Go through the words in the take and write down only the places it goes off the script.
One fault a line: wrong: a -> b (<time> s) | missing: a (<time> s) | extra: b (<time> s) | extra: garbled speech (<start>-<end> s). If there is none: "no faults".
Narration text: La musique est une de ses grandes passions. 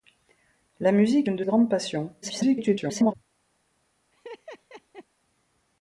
missing: est (1.3 s)
missing: ses (1.4 s)
extra: garbled speech (2.2-3.1 s)